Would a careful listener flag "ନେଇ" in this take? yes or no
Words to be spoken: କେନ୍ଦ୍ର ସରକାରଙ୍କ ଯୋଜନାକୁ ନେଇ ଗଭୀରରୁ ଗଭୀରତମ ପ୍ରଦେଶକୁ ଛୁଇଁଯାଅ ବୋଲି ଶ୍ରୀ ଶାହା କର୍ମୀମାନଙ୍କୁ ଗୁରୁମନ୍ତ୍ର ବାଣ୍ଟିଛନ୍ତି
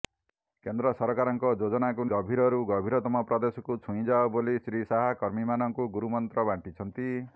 yes